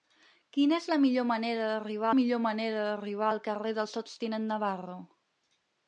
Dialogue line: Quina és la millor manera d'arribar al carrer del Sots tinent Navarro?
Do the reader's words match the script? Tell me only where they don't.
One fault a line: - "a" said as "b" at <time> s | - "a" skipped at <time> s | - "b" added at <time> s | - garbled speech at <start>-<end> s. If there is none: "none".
- "millor manera d'arribar" added at 2.2 s